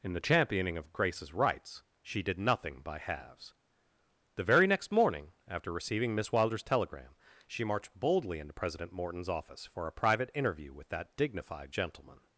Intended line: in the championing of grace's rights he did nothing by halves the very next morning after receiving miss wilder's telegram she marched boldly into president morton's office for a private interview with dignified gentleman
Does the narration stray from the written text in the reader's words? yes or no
yes